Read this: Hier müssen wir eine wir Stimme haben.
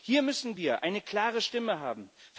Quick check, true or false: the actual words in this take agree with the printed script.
false